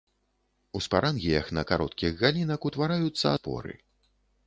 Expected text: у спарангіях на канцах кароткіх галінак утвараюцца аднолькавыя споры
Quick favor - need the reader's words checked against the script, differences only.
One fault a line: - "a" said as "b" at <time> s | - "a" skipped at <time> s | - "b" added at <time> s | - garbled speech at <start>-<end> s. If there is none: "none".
- "канцах" skipped at 1.6 s
- "аднолькавыя" skipped at 3.3 s